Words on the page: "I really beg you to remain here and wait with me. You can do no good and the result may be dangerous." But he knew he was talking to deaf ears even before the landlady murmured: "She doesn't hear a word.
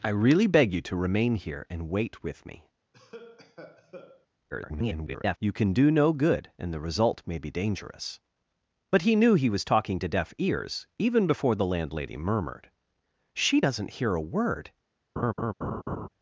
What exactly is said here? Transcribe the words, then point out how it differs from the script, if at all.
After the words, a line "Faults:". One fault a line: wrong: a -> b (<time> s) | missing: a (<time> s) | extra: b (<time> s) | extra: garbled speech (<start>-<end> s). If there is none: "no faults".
"I really beg you to remain here and wait with me. [garbled] You can do no good and the result may be dangerous." But he knew he was talking to deaf ears even before the landlady murmured: "She doesn't hear a word.
Faults:
extra: garbled speech (4.5-5.4 s)